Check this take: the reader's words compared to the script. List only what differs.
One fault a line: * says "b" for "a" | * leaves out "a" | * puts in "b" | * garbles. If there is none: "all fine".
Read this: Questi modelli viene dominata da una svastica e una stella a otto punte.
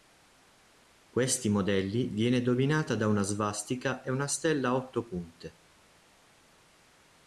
all fine